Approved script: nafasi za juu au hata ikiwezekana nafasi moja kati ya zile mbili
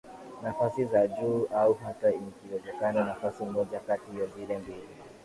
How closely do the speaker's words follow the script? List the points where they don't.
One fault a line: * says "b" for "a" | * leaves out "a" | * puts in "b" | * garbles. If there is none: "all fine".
all fine